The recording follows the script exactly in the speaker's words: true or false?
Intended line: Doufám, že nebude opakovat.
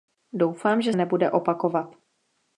true